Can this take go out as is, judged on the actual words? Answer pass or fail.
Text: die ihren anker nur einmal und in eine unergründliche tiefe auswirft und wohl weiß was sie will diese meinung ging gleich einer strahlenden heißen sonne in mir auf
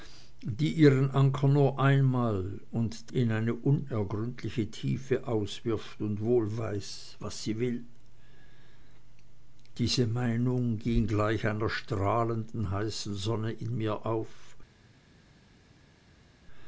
pass